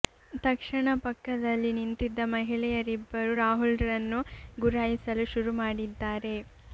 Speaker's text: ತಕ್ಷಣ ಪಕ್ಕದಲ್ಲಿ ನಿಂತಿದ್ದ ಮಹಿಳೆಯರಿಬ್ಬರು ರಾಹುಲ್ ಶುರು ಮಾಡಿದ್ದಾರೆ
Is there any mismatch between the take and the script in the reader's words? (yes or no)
yes